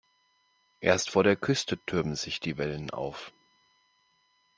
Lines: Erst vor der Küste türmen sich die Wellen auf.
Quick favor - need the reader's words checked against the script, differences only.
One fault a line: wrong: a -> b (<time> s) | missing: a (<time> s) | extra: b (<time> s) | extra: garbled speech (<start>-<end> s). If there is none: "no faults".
no faults